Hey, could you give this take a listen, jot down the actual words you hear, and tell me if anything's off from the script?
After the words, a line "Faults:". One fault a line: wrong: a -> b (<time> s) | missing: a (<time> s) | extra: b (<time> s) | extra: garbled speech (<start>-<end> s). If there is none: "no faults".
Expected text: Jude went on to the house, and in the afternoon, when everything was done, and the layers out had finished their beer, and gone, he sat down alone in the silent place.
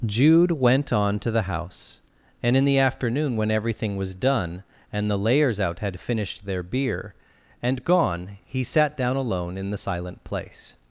Jude went on to the house, and in the afternoon, when everything was done, and the layers out had finished their beer, and gone, he sat down alone in the silent place.
Faults:
no faults